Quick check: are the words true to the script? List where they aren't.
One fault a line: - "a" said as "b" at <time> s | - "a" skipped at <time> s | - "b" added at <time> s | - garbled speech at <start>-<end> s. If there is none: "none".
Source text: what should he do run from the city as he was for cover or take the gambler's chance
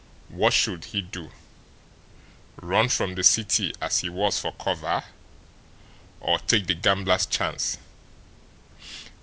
none